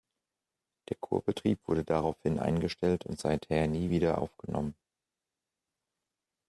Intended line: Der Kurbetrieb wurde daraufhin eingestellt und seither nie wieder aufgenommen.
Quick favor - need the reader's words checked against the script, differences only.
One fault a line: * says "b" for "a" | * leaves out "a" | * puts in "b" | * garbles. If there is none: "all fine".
all fine